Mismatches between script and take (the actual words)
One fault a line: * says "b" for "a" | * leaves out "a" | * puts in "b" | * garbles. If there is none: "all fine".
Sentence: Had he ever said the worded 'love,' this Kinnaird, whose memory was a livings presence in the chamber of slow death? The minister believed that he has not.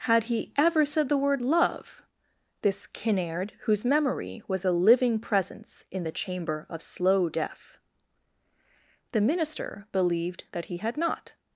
* says "word" for "worded"
* says "living" for "livings"
* says "had" for "has"